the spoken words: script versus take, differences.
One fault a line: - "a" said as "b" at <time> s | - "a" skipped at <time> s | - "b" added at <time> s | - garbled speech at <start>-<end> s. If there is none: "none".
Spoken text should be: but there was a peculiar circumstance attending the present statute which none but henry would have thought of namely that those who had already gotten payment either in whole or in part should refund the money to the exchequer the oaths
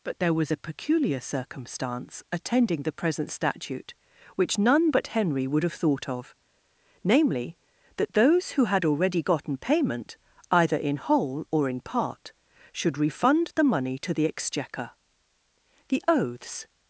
none